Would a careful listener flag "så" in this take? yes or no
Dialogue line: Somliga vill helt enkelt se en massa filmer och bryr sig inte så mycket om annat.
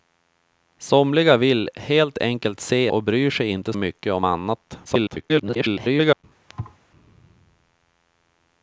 yes